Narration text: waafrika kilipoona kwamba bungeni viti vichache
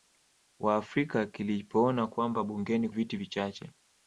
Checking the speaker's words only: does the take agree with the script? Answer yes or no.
yes